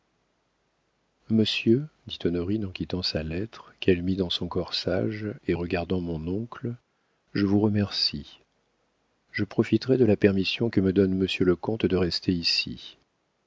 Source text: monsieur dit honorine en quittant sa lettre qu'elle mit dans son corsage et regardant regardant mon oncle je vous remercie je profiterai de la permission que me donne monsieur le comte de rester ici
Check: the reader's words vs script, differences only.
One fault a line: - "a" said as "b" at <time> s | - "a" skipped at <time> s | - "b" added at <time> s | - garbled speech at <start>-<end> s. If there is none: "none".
- "regardant" skipped at 6.0 s